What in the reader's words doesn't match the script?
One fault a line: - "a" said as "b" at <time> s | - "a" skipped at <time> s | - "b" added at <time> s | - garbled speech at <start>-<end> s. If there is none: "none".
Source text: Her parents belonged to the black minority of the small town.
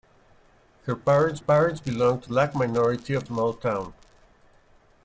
- "parents" added at 1.4 s
- "the" skipped at 2.3 s
- "the" skipped at 3.3 s